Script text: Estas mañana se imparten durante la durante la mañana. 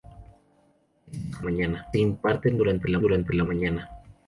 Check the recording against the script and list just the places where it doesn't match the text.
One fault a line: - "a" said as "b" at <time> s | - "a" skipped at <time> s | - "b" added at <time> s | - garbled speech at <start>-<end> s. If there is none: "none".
none